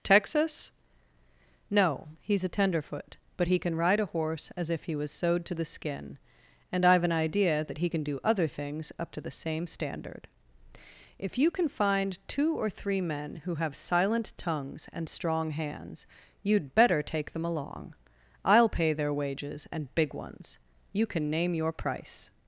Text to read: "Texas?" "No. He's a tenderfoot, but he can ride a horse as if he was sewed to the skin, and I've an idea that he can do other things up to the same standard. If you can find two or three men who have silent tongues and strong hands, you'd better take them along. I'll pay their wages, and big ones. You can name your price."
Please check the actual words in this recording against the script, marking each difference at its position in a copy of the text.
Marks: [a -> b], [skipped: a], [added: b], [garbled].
"Texas?" "No. He's a tenderfoot, but he can ride a horse as if he was sewed to the skin, and I've an idea that he can do other things up to the same standard. If you can find two or three men who have silent tongues and strong hands, you'd better take them along. I'll pay their wages, and big ones. You can name your price."